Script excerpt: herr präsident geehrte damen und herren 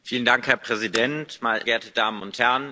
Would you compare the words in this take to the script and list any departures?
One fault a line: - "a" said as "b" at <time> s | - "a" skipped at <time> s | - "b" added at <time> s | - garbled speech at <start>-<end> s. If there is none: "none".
none